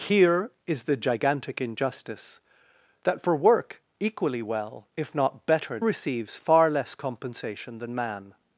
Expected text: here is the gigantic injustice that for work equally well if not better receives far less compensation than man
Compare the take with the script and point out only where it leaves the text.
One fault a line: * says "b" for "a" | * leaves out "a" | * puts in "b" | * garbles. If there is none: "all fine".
all fine